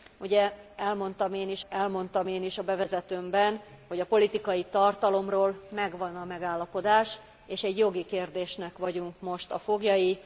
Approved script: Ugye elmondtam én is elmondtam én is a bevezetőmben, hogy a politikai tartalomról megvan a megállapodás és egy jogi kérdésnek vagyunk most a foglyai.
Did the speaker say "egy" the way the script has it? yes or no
yes